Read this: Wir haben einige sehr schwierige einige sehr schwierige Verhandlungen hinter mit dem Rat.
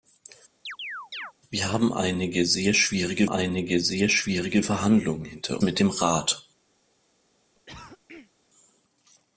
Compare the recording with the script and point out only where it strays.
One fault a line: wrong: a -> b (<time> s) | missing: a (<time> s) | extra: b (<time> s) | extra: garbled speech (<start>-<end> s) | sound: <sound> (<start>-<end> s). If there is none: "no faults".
sound: chirp (0.7-1.3 s)
sound: cough (7.5-8.3 s)